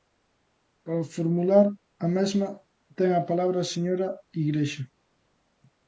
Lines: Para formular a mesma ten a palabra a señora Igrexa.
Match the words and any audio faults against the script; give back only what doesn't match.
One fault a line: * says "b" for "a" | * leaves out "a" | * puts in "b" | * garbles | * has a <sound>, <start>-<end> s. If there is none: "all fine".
all fine